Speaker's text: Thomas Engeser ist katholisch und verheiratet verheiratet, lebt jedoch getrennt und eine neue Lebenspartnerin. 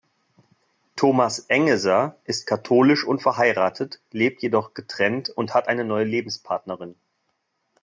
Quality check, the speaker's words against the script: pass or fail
fail